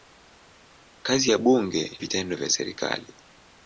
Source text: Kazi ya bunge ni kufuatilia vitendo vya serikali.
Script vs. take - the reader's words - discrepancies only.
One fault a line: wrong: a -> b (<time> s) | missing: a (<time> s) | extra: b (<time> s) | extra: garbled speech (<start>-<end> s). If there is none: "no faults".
missing: ni kufuatilia (2.0 s)